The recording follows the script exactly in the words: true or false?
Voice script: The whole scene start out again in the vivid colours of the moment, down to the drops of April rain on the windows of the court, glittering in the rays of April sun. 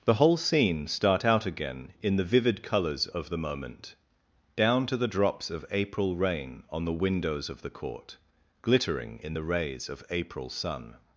true